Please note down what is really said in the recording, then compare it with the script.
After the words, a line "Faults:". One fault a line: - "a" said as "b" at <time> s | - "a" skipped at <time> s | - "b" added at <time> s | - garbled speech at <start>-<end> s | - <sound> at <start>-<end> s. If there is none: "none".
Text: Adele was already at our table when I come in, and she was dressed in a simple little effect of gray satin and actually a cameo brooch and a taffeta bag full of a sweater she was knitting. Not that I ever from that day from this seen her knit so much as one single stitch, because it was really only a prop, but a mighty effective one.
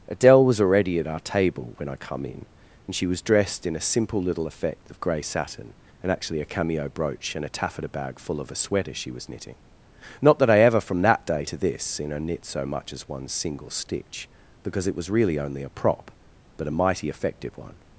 Adele was already at our table when I come in, and she was dressed in a simple little effect of gray satin and actually a cameo brooch and a taffeta bag full of a sweater she was knitting. Not that I ever from that day to this seen her knit so much as one single stitch, because it was really only a prop, but a mighty effective one.
Faults:
- "from" said as "to" at 11.4 s